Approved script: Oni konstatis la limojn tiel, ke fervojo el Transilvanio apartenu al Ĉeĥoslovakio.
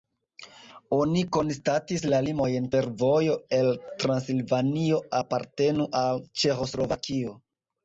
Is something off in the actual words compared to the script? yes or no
yes